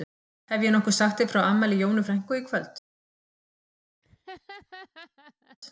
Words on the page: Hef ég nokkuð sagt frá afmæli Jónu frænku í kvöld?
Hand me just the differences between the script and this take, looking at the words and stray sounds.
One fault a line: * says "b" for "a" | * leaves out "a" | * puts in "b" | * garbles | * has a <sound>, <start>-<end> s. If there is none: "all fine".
* puts in "þér"
* has a laugh, 4.0-5.6 s